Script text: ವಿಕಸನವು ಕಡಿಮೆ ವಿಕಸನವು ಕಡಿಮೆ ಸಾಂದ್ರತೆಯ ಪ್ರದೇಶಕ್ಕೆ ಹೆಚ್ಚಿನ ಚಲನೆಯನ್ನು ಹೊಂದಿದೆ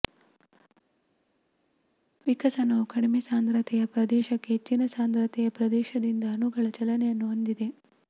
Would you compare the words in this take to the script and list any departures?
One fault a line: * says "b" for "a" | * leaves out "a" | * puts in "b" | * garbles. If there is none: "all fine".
* says "ಸಾಂದ್ರತೆಯ ಪ್ರದೇಶಕ್ಕೆ ಹೆಚ್ಚಿನ" for "ವಿಕಸನವು ಕಡಿಮೆ"
* says "ಪ್ರದೇಶದಿಂದ ಅಣುಗಳ" for "ಪ್ರದೇಶಕ್ಕೆ ಹೆಚ್ಚಿನ"